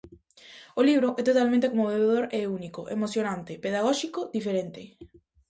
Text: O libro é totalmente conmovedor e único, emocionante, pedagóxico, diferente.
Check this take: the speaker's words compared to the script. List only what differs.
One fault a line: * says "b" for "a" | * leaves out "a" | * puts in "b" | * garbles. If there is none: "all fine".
all fine